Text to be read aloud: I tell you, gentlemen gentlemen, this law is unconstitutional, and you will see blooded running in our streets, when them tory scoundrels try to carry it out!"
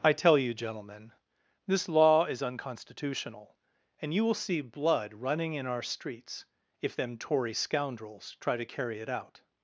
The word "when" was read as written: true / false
false